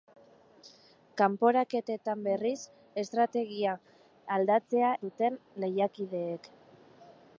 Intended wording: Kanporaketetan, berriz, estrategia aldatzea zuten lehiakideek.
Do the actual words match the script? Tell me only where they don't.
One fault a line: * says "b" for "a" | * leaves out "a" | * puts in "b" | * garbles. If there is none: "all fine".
all fine